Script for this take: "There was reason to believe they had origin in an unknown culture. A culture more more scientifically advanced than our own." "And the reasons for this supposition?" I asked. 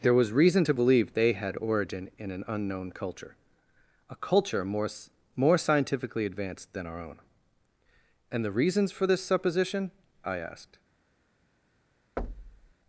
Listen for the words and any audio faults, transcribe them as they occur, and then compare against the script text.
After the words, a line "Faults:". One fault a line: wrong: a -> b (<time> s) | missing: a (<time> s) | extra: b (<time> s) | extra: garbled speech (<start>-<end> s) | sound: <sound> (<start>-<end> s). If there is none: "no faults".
"There was reason to believe they had origin in an unknown culture. A culture more more scientifically advanced than our own." "And the reasons for this supposition?" I asked.
Faults:
sound: thud (12.2-12.7 s)